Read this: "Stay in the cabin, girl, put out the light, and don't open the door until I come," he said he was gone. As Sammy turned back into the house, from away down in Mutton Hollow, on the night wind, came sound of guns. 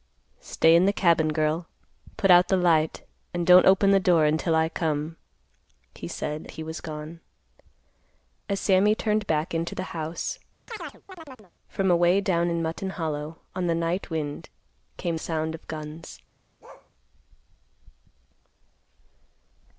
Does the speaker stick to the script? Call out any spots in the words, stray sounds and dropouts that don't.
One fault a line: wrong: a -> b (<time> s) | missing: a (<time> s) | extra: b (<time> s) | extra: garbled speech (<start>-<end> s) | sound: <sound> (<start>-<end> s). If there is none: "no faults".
sound: chirp (10.7-11.5 s)
sound: bark (16.6-16.9 s)